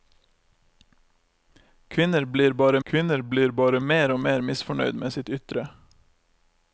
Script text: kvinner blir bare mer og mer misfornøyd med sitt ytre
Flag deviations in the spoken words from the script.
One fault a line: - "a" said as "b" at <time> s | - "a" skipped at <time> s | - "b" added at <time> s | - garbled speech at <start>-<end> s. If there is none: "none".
- "kvinner blir bare" added at 2.9 s